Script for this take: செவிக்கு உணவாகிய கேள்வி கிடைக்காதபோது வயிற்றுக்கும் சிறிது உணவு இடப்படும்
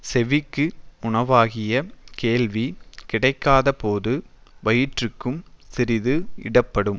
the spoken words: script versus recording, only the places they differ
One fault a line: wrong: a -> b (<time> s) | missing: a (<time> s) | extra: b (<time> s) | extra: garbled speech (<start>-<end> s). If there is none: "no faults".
missing: உணவு (6.2 s)